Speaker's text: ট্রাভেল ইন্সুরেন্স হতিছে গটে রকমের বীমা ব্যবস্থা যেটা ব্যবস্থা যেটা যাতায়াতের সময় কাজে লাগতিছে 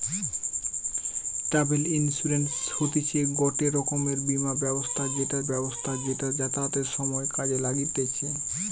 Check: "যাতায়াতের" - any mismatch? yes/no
no